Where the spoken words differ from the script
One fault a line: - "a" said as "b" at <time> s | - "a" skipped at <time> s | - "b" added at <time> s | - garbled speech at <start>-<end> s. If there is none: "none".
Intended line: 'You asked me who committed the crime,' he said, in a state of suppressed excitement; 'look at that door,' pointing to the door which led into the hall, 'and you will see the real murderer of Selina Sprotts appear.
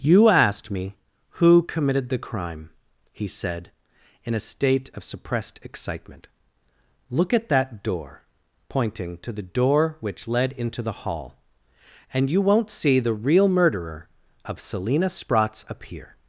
- "will" said as "won't" at 12.4 s